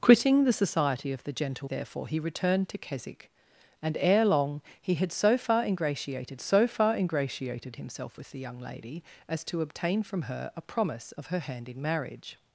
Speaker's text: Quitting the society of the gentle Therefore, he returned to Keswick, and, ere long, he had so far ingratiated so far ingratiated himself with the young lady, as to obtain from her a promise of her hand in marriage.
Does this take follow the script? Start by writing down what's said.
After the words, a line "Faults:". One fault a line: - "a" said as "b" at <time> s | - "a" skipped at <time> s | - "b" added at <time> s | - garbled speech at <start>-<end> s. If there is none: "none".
Quitting the society of the gentle Therefore, he returned to Keswick, and, ere long, he had so far ingratiated so far ingratiated himself with the young lady, as to obtain from her a promise of her hand in marriage.
Faults:
none